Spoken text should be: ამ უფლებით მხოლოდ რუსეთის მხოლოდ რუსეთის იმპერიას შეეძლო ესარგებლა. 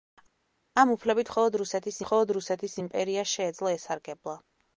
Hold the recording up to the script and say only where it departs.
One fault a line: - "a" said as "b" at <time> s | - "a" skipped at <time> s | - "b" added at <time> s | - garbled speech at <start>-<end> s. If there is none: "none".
none